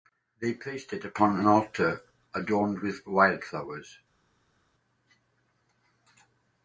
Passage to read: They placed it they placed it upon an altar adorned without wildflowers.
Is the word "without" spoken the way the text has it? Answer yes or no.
no